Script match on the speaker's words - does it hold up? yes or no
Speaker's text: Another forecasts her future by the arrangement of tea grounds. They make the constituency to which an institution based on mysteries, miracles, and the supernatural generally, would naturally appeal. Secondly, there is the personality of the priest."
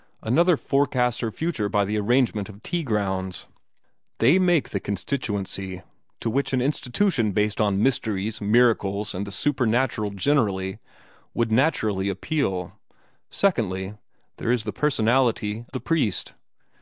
no